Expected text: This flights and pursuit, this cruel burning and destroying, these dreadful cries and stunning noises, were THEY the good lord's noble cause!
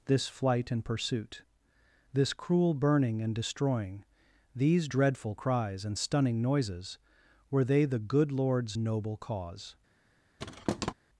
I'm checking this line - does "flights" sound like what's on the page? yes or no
no